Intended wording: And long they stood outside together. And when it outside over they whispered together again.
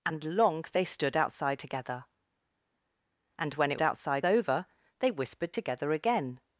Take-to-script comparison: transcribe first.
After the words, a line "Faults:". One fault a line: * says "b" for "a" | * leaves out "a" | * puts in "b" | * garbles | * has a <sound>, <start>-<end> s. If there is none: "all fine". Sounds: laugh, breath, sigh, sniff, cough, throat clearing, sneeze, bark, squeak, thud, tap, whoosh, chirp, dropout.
And long they stood outside together. And when it outside over they whispered together again.
Faults:
all fine